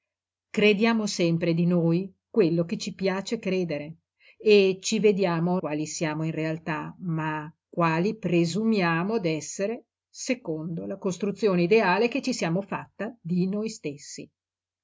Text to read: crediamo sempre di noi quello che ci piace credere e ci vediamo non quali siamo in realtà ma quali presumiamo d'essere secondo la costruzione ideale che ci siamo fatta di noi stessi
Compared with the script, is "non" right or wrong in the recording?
wrong